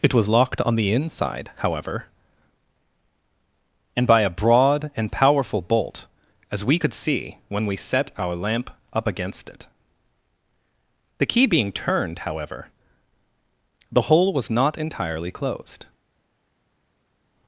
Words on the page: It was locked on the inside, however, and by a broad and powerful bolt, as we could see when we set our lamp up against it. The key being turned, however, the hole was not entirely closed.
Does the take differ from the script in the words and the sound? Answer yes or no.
no